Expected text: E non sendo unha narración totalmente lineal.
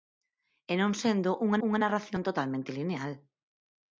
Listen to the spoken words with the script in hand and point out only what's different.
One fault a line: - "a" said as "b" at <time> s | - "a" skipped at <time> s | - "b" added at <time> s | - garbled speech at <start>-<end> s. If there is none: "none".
- "unha" added at 1.7 s